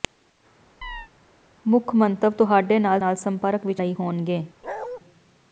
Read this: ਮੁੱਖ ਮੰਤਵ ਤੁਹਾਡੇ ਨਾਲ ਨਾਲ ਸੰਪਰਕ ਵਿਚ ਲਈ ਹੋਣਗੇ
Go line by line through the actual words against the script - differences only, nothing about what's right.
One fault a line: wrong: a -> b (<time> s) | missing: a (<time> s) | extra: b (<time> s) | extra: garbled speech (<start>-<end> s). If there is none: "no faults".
no faults